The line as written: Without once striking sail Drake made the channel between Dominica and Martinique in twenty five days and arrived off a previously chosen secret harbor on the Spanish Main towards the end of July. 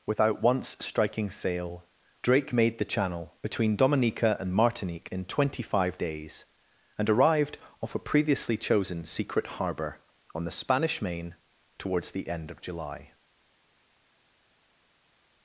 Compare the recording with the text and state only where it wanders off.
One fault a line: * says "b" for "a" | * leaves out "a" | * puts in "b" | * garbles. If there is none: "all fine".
all fine